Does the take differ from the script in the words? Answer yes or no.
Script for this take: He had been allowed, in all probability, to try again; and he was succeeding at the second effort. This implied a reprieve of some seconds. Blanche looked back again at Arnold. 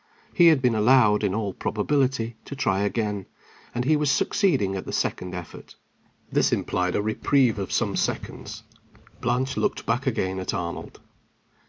no